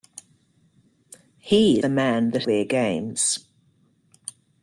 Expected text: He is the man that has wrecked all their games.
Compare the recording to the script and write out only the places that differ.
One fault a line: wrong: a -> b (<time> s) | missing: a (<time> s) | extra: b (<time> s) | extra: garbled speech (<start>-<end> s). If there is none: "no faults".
missing: is (1.8 s)
missing: has wrecked all (2.4 s)